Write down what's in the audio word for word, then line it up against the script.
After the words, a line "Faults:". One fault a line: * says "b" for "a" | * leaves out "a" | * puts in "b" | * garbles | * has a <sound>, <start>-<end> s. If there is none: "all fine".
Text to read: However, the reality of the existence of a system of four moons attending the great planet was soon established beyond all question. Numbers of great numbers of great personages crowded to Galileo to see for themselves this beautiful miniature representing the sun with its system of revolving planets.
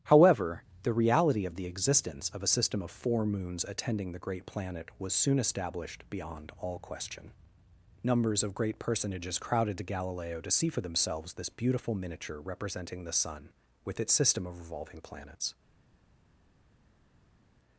However, the reality of the existence of a system of four moons attending the great planet was soon established beyond all question. Numbers of great personages crowded to Galileo to see for themselves this beautiful miniature representing the sun with its system of revolving planets.
Faults:
* leaves out "numbers of great"